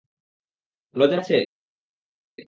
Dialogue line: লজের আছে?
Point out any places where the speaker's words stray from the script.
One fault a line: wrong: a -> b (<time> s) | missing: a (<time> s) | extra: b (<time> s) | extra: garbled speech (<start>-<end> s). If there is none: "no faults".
no faults